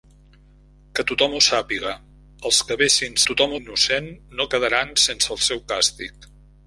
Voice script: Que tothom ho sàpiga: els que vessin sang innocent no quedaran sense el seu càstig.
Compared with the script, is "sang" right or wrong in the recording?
wrong